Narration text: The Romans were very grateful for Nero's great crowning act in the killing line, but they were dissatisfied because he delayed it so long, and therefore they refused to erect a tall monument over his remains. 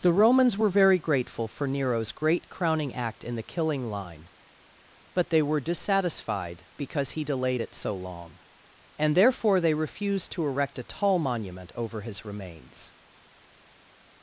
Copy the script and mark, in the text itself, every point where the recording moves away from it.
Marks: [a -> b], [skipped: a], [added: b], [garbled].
The Romans were very grateful for Nero's great crowning act in the killing line, but they were dissatisfied because he delayed it so long, and therefore they refused to erect a tall monument over his remains.